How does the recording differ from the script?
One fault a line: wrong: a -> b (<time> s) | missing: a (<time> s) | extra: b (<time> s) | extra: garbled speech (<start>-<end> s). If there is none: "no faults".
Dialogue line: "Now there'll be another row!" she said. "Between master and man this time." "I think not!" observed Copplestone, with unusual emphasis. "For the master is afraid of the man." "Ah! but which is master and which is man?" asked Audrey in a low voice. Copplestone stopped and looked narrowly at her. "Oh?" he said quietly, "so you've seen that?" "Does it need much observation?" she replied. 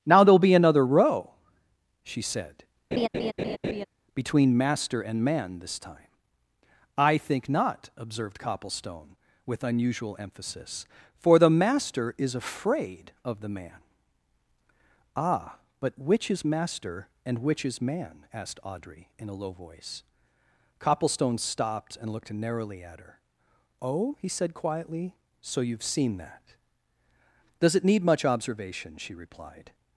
no faults